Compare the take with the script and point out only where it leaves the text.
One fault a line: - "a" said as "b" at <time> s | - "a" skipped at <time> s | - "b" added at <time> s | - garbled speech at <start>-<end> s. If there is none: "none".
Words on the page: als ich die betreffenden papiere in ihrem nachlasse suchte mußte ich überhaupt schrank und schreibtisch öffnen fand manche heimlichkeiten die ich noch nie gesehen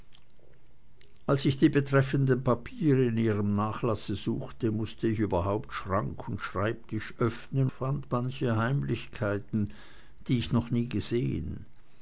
none